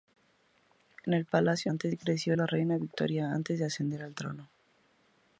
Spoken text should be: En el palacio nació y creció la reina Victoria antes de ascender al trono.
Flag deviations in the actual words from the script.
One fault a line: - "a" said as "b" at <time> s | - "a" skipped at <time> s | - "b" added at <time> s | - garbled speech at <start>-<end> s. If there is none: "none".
- "nació" said as "antes" at 1.7 s